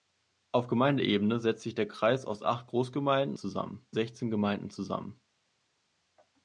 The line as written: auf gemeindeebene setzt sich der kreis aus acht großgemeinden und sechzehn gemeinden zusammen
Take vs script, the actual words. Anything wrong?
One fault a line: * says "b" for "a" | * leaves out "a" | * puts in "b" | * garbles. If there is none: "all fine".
* says "zusammen" for "und"